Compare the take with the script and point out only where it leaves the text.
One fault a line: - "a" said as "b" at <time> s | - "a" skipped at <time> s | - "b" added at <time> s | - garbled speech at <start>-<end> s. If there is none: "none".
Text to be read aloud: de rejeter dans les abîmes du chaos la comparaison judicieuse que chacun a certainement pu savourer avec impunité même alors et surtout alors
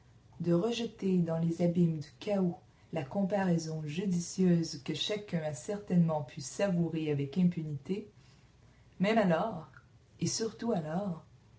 none